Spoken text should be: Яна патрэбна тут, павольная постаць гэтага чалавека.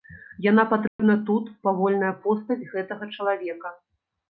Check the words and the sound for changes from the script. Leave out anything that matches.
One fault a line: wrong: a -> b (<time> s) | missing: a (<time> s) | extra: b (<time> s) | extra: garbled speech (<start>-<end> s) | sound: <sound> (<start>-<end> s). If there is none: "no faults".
sound: dropout (0.9-1.0 s)